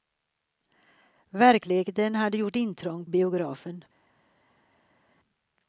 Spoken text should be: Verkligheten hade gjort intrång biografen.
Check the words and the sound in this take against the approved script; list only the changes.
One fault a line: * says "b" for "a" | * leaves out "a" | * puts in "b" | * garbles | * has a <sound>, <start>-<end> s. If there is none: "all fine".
all fine